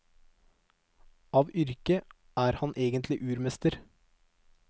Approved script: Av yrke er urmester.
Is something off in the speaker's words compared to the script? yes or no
yes